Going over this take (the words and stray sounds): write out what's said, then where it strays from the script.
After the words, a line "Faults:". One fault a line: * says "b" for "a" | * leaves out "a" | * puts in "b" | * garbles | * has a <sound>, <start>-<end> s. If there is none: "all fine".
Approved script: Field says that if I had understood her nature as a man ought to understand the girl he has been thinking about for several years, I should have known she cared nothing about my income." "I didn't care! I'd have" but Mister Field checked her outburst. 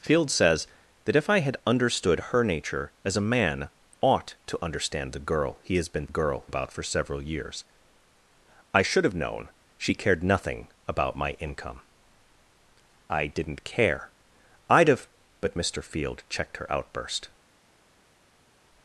Field says that if I had understood her nature as a man ought to understand the girl he has been girl about for several years, I should have known she cared nothing about my income." "I didn't care! I'd have" but Mister Field checked her outburst.
Faults:
* says "girl" for "thinking"